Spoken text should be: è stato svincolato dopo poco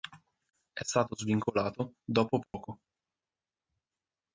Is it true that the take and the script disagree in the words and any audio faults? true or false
true